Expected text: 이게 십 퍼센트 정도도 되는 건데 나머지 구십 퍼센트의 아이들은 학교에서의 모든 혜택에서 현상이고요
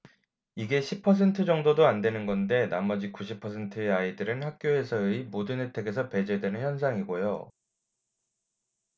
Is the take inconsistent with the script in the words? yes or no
yes